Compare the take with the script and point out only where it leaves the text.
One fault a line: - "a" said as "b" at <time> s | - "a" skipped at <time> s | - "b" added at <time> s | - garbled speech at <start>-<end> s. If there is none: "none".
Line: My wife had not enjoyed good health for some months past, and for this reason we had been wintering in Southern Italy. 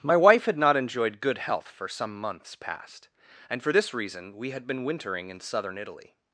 none